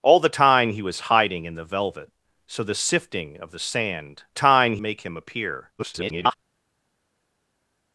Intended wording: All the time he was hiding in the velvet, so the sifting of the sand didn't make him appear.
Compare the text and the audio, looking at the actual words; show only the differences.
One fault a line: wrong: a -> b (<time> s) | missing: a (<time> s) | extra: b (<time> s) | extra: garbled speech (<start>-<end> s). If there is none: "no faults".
wrong: didn't -> time (4.3 s)
extra: garbled speech (5.8-6.3 s)